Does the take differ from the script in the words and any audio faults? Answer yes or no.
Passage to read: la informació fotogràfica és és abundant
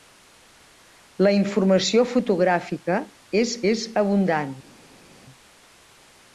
no